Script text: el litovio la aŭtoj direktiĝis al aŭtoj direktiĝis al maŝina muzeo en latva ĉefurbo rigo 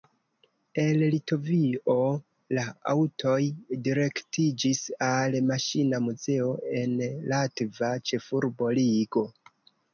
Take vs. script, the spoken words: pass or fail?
fail